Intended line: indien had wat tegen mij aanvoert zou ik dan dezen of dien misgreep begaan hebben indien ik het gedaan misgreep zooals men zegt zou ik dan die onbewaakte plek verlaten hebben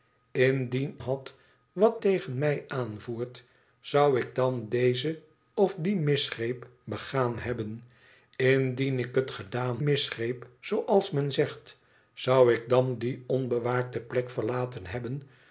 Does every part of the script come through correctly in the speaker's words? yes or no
yes